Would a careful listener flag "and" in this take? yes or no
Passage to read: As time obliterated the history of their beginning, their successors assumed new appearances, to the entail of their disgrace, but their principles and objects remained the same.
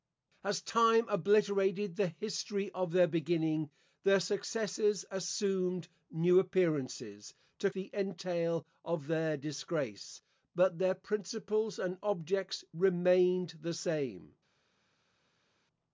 no